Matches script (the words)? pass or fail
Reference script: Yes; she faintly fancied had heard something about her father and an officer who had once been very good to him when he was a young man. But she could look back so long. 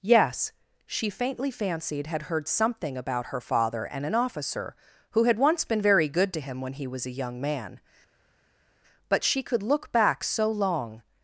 pass